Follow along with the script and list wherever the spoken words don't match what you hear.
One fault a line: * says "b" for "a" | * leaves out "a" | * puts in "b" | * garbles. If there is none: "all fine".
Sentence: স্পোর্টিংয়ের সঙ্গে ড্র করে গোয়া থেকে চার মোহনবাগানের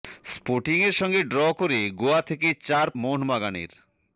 all fine